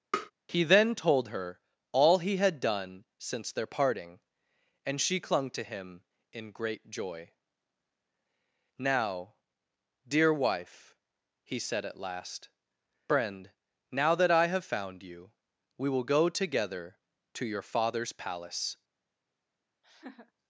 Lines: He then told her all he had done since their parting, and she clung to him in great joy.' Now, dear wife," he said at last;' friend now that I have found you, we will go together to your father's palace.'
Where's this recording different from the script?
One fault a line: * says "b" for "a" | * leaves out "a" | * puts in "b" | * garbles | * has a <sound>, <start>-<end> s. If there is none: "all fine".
* has a tap, 0.1-0.3 s
* has a laugh, 19.8-20.3 s